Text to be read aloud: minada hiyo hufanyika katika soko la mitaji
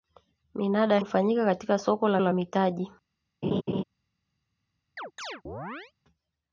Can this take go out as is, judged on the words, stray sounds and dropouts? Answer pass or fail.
fail